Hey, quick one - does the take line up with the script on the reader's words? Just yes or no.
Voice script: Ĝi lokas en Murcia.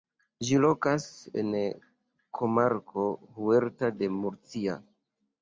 no